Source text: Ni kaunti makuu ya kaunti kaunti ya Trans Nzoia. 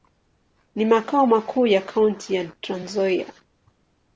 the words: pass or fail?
fail